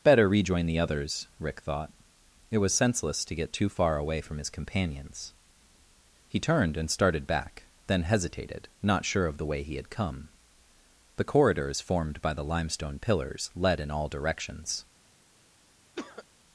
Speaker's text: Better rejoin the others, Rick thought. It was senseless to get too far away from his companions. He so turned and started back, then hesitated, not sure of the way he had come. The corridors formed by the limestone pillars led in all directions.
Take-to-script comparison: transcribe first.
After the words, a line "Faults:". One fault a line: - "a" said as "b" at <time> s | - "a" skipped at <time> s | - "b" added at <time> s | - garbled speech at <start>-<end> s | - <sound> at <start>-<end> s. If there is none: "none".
Better rejoin the others, Rick thought. It was senseless to get too far away from his companions. He turned and started back, then hesitated, not sure of the way he had come. The corridors formed by the limestone pillars led in all directions.
Faults:
- "so" skipped at 6.4 s
- cough at 15.9-16.2 s